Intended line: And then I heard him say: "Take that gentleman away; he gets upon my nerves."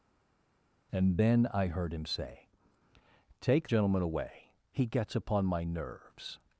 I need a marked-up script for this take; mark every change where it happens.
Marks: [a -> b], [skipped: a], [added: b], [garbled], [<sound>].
And then I heard him say: "Take [skipped: that] gentleman away; he gets upon my nerves."